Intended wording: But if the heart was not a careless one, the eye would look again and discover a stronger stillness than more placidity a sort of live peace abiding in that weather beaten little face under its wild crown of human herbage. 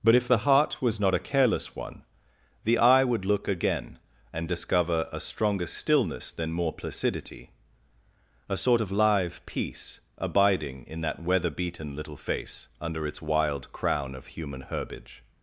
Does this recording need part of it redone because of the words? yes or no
no